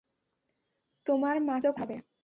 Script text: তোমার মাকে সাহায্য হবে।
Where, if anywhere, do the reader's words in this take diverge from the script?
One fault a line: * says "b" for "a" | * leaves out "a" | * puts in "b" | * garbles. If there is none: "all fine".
all fine